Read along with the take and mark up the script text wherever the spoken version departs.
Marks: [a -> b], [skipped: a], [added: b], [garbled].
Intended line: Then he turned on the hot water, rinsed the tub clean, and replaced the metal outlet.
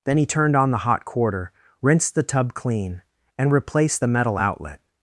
Then he turned on the hot [water, -> quarter] rinsed the tub clean, and replaced the metal outlet.